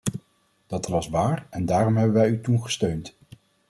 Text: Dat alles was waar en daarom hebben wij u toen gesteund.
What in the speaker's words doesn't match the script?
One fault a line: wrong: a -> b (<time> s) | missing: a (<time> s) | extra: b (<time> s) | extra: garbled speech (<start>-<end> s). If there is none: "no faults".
missing: alles (0.9 s)